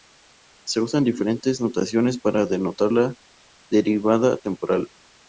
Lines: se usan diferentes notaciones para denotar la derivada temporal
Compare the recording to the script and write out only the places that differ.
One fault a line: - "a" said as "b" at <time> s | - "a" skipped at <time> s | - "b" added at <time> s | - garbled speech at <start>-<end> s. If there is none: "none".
none